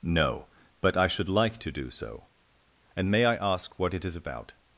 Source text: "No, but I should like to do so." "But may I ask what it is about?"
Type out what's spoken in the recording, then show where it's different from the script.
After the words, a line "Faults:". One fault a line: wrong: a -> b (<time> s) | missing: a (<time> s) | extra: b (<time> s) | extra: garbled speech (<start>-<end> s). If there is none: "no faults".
"No, but I should like to do so." "And may I ask what it is about?"
Faults:
wrong: But -> And (2.9 s)